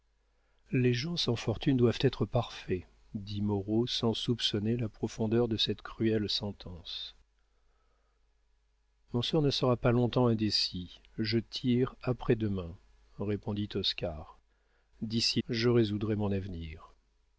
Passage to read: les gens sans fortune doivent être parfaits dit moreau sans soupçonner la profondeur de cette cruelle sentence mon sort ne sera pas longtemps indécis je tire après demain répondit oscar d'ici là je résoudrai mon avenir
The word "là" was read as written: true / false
false